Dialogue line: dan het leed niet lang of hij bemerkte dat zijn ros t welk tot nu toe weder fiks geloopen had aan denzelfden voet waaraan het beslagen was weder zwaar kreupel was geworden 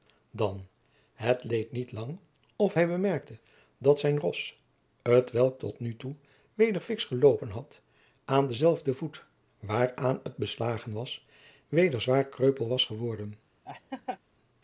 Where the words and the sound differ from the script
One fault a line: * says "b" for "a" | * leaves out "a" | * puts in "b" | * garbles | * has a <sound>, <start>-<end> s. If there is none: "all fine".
* has a laugh, 13.7-14.2 s